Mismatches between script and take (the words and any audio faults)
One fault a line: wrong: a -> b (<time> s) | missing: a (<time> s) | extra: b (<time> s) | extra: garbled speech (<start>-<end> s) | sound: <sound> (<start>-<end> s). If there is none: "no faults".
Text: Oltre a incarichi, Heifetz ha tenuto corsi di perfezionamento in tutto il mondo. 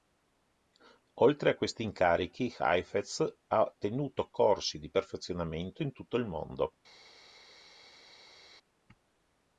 extra: questi (1.6 s)